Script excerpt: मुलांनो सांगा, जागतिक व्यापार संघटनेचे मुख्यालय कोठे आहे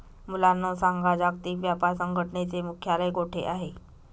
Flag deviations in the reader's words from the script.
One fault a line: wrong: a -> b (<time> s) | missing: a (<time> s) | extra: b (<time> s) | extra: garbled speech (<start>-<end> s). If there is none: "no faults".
no faults